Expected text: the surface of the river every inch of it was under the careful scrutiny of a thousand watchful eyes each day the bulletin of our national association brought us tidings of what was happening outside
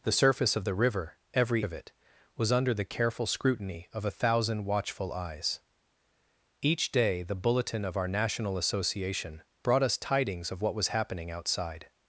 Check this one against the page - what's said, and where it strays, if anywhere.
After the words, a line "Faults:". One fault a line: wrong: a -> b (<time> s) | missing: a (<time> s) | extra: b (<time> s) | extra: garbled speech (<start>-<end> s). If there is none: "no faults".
the surface of the river every of it was under the careful scrutiny of a thousand watchful eyes each day the bulletin of our national association brought us tidings of what was happening outside
Faults:
missing: inch (1.6 s)